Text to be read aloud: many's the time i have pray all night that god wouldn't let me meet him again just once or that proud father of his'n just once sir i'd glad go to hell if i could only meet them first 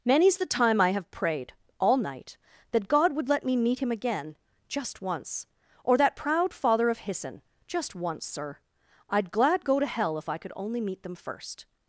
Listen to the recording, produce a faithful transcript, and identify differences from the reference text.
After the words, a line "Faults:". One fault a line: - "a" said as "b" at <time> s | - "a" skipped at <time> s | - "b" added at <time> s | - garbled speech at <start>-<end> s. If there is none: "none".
many's the time i have prayed all night that god would let me meet him again just once or that proud father of his'n just once sir i'd glad go to hell if i could only meet them first
Faults:
- "pray" said as "prayed" at 1.1 s
- "wouldn't" said as "would" at 3.1 s